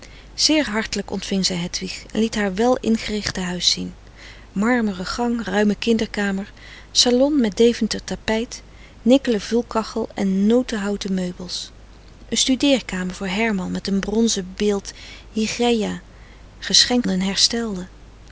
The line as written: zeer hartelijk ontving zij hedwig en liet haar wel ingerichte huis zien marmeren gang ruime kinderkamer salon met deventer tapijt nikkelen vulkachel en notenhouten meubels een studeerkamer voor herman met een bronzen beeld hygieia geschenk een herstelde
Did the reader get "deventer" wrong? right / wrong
right